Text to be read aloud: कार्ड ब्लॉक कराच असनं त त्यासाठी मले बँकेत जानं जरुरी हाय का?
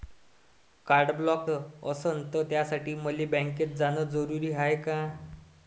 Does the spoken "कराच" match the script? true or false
false